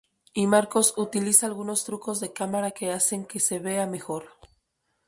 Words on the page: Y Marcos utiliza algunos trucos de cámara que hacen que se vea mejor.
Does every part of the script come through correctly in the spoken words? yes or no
yes